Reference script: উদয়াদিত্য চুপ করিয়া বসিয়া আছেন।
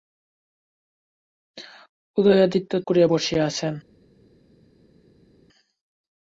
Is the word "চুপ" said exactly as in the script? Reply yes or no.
no